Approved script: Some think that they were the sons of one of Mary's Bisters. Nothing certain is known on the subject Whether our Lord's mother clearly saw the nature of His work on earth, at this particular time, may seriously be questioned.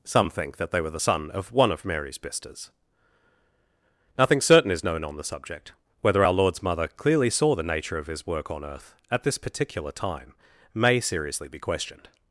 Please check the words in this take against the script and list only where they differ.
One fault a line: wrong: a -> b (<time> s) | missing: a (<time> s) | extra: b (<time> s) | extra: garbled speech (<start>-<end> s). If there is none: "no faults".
wrong: sons -> son (1.0 s)